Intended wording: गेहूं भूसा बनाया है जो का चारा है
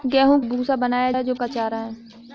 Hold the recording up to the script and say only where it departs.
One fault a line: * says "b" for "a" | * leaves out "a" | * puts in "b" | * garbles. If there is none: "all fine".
all fine